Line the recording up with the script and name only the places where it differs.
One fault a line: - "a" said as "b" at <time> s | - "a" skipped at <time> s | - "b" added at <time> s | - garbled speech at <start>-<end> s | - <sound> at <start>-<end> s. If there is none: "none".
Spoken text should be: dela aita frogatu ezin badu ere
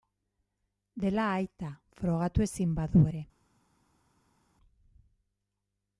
none